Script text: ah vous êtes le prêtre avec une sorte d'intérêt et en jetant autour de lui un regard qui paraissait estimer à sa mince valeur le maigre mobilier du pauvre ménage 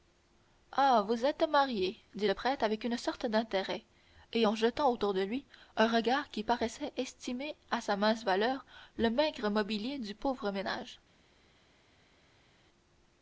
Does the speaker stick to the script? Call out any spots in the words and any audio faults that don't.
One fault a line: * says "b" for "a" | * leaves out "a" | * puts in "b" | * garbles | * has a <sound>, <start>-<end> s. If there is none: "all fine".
* puts in "marié dit"